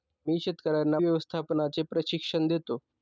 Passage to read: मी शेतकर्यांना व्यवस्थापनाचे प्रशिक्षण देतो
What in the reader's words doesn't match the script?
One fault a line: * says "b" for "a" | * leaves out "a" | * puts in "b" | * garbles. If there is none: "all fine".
all fine